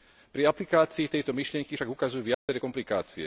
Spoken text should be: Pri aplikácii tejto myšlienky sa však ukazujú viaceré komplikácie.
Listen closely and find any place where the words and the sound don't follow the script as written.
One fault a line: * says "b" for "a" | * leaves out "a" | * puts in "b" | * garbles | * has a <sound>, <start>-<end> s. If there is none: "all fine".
* leaves out "sa"
* has a dropout, 2.3-2.5 s